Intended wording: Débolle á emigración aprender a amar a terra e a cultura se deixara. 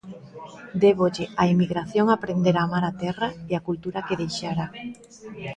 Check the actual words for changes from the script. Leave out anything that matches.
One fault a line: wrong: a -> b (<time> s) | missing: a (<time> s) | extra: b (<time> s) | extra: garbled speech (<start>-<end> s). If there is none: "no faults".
wrong: se -> que (4.1 s)